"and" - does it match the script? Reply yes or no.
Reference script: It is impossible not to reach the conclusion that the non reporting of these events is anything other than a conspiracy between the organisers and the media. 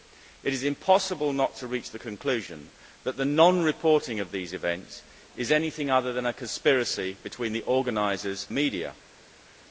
no